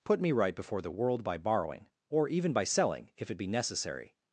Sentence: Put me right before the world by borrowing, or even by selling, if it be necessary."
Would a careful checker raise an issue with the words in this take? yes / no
no